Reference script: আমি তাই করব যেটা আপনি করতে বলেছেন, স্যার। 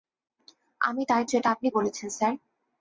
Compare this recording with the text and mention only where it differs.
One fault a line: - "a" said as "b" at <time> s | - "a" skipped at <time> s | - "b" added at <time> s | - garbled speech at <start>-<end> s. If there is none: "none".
- "করব" skipped at 1.2 s
- "করতে" skipped at 1.7 s